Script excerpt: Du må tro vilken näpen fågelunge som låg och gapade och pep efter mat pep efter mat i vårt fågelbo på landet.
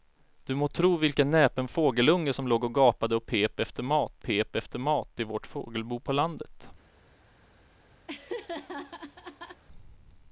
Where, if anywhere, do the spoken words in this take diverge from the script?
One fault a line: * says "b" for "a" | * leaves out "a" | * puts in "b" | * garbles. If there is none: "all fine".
all fine